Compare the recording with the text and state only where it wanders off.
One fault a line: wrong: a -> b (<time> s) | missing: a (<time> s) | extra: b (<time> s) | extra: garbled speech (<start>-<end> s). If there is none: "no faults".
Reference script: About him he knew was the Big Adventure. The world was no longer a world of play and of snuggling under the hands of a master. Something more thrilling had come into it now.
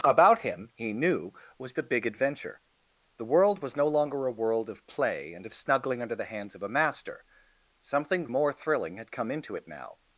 no faults